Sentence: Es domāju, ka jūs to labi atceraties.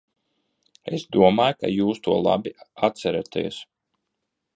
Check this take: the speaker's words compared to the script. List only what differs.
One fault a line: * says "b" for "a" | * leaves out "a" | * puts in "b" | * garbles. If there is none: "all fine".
all fine